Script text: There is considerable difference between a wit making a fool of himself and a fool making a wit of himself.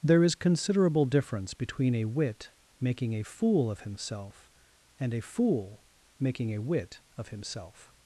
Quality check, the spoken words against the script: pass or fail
pass